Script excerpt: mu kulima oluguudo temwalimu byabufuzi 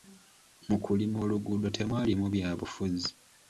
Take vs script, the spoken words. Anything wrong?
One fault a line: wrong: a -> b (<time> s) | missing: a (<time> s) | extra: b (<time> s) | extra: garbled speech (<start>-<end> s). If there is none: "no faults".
no faults